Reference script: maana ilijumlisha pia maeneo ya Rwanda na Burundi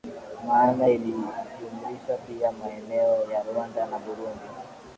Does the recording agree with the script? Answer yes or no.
yes